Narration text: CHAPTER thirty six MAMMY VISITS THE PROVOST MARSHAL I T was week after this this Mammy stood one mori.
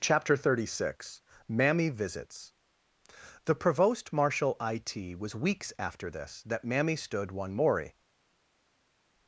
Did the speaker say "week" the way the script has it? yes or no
no